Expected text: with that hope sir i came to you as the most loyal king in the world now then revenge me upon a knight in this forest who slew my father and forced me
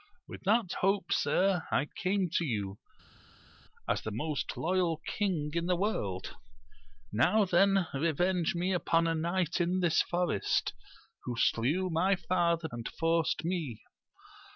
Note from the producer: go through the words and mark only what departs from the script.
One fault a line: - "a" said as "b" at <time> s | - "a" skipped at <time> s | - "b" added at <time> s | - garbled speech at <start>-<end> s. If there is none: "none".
none